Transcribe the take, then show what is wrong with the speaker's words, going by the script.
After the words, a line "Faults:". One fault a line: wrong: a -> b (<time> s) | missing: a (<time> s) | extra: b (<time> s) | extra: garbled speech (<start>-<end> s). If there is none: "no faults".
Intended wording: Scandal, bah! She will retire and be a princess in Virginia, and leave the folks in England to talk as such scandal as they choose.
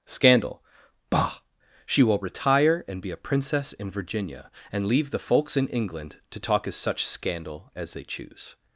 Scandal, bah! She will retire and be a princess in Virginia, and leave the folks in England to talk as such scandal as they choose.
Faults:
no faults